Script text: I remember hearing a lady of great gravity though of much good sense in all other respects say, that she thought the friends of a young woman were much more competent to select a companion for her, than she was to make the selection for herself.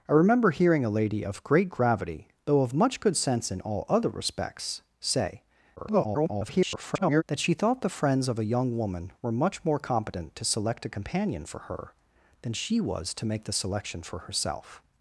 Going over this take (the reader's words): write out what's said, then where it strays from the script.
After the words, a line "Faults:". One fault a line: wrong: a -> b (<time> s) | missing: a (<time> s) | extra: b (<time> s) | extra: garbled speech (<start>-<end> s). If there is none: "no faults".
I remember hearing a lady of great gravity though of much good sense in all other respects say, [garbled] that she thought the friends of a young woman were much more competent to select a companion for her, than she was to make the selection for herself.
Faults:
extra: garbled speech (5.8-7.2 s)